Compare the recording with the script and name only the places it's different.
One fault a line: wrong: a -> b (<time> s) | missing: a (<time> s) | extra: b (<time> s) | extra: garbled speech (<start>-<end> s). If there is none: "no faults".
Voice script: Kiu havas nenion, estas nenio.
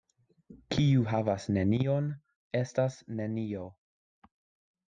no faults